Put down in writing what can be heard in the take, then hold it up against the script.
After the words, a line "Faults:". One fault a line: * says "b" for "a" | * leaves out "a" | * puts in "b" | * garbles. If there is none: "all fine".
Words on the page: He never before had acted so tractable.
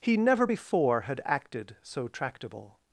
He never before had acted so tractable.
Faults:
all fine